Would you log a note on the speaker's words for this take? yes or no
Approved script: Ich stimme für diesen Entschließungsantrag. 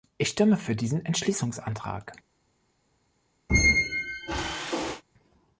no